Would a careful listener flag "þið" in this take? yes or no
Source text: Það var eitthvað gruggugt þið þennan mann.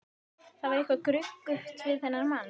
yes